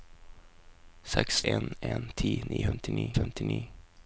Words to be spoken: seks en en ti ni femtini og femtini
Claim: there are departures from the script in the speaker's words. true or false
false